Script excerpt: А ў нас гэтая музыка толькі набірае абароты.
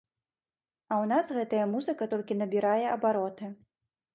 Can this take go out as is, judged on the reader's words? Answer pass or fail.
pass